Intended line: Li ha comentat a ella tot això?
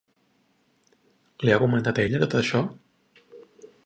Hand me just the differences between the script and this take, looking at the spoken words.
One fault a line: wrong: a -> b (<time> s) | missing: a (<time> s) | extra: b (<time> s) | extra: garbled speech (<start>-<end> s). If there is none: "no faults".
no faults